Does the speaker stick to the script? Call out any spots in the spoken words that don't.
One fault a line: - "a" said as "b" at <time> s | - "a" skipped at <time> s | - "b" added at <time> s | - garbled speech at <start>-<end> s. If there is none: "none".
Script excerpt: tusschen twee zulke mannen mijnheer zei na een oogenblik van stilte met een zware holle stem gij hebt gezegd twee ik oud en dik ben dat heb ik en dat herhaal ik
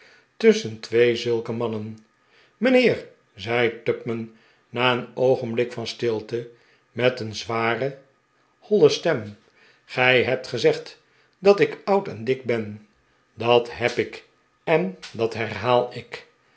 - "tupman" added at 3.8 s
- "twee" said as "dat" at 11.4 s